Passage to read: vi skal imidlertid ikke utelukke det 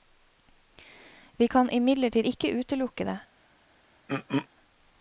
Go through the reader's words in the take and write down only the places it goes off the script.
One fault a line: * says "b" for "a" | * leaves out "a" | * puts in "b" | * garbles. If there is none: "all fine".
* says "kan" for "skal"